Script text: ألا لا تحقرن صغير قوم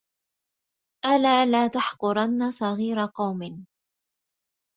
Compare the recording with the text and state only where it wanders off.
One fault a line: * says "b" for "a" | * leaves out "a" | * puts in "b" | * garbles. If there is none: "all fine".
all fine